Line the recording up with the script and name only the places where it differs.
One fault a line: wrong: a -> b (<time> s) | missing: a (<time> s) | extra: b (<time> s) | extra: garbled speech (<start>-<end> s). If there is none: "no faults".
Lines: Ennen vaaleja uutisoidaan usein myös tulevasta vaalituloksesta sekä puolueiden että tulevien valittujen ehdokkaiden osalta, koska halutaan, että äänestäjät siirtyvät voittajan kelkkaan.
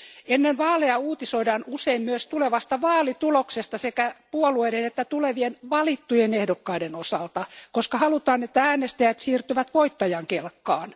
no faults